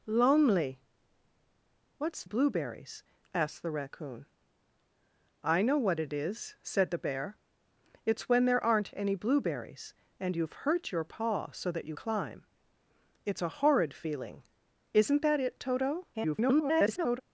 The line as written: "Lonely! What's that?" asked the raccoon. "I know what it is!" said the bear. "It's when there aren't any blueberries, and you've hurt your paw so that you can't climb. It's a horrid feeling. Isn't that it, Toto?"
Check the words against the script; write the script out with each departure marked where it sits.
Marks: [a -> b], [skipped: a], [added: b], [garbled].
"Lonely! What's [that?" -> blueberries] asked the raccoon. "I know what it is!" said the bear. "It's when there aren't any blueberries, and you've hurt your paw so that you [skipped: can't] climb. It's a horrid feeling. Isn't that it, Toto?" [garbled]